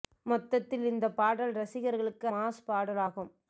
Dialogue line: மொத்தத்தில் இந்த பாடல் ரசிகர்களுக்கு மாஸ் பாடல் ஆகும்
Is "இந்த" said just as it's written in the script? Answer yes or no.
yes